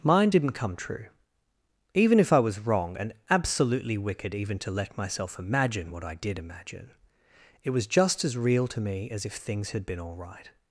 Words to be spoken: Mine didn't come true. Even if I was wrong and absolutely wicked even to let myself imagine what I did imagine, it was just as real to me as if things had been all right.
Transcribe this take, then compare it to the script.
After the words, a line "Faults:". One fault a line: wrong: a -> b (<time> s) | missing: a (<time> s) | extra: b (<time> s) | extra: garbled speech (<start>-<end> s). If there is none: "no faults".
Mine didn't come true. Even if I was wrong and absolutely wicked even to let myself imagine what I did imagine, it was just as real to me as if things had been all right.
Faults:
no faults